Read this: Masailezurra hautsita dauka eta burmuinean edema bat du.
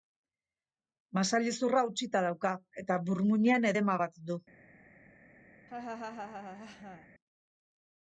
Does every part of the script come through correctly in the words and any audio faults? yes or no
no